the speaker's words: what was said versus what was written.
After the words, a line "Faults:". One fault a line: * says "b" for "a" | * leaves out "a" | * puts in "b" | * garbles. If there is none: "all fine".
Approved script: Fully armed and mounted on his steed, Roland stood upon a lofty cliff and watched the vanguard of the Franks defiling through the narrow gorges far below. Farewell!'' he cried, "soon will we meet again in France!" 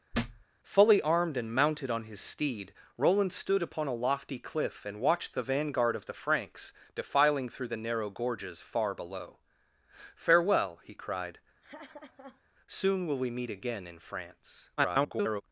Fully armed and mounted on his steed, Roland stood upon a lofty cliff and watched the vanguard of the Franks defiling through the narrow gorges far below. Farewell!'' he cried, "soon will we meet again in France!" [garbled]
Faults:
* garbles